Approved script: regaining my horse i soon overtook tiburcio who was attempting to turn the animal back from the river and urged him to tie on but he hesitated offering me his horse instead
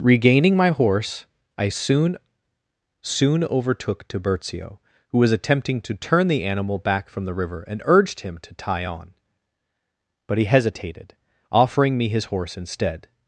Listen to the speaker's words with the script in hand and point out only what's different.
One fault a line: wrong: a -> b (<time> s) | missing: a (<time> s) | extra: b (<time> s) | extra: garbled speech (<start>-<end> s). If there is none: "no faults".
extra: soon (3.0 s)